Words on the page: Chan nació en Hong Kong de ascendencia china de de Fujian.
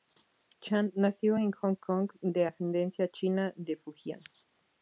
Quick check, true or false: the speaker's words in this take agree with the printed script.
false